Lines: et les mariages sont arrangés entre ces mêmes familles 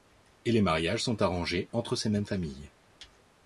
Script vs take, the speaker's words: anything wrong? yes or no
no